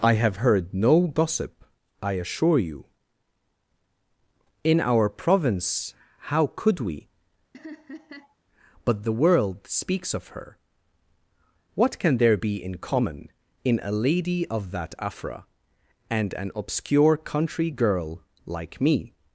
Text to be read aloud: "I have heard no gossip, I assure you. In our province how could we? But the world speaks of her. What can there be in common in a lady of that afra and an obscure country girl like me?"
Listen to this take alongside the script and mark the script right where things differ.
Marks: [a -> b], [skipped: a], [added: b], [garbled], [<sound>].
"I have heard no gossip, I assure you. In our province how could we? [laugh] But the world speaks of her. What can there be in common in a lady of that afra and an obscure country girl like me?"